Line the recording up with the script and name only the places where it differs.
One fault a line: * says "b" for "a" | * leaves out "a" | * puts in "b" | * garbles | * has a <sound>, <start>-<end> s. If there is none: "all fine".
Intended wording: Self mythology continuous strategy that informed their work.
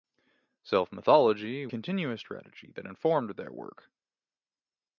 all fine